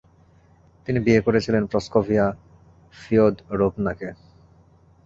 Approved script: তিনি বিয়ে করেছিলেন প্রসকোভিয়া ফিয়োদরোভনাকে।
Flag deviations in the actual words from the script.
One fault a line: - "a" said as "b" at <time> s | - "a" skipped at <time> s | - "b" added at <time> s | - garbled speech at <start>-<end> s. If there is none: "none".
none